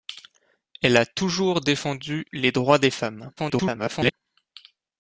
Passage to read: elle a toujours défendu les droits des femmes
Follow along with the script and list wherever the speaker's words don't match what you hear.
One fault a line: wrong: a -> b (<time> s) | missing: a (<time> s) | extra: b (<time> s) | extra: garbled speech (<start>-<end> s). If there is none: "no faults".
extra: garbled speech (3.4-4.1 s)